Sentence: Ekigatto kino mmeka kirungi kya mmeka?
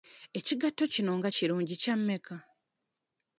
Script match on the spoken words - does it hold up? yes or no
no